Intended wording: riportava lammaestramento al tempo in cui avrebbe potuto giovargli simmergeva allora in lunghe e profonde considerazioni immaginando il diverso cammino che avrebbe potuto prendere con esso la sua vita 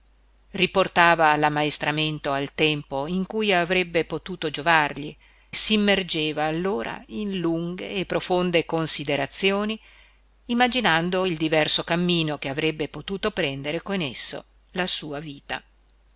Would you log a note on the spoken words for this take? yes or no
no